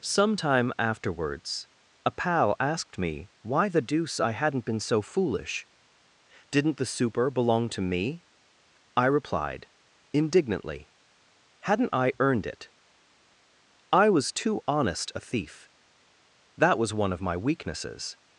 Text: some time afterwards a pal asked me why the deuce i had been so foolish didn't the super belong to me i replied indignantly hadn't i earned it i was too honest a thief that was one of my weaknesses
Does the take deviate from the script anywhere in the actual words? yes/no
yes